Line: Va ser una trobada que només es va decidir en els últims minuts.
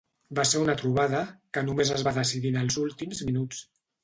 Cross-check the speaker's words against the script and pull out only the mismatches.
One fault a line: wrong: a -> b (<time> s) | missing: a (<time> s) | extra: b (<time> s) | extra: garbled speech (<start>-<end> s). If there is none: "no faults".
no faults